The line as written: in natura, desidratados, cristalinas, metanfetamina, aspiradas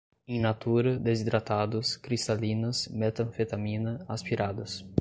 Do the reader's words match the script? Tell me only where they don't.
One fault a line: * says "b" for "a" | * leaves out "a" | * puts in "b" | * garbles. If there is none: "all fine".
all fine